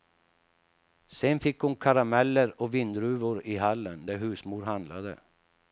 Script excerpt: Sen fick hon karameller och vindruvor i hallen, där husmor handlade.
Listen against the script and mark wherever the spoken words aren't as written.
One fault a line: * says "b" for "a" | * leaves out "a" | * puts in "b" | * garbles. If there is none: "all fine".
all fine